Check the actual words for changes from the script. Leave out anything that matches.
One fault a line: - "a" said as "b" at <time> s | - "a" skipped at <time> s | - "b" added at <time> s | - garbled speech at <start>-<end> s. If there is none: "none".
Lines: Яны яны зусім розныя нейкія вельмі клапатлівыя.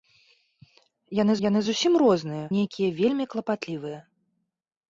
none